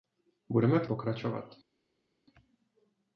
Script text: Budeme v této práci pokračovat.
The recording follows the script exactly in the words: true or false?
false